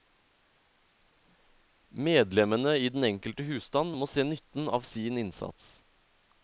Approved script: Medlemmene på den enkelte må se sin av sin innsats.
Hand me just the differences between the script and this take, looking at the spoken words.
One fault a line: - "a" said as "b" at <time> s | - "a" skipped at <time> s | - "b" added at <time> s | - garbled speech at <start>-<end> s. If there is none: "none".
- "på" said as "i" at 2.8 s
- "husstand" added at 3.5 s
- "sin" said as "nytten" at 4.2 s